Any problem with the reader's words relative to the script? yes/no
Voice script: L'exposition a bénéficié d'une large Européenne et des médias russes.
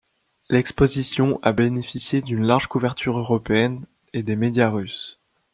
yes